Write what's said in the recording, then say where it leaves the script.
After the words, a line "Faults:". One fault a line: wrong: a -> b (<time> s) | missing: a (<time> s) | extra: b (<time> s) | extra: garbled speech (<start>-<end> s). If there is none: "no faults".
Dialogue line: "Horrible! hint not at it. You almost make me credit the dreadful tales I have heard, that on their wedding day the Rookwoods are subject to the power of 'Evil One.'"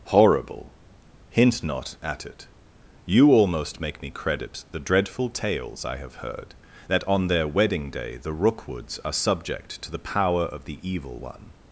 "Horrible! hint not at it. You almost make me credit the dreadful tales I have heard, that on their wedding day the Rookwoods are subject to the power of the 'Evil One.'"
Faults:
extra: the (10.7 s)